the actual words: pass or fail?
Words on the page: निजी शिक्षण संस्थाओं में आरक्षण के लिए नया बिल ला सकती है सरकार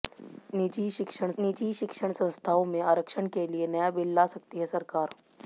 fail